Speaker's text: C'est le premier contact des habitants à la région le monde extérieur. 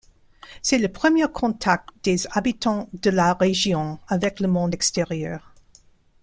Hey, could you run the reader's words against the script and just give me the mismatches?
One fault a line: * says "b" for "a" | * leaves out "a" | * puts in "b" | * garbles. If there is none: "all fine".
* says "de" for "à"
* puts in "avec"